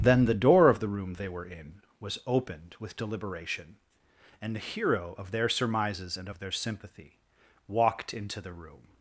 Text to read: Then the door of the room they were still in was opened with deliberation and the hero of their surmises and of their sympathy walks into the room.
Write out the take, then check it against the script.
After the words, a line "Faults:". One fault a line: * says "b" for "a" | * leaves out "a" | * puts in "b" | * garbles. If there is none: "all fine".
Then the door of the room they were in was opened with deliberation and the hero of their surmises and of their sympathy walked into the room.
Faults:
* leaves out "still"
* says "walked" for "walks"